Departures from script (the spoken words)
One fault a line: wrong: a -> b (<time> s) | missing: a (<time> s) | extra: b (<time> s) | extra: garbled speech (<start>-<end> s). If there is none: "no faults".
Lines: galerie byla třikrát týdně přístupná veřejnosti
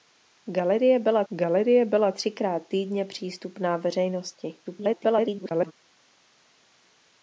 extra: galerie byla (1.3 s)
extra: garbled speech (4.6-5.7 s)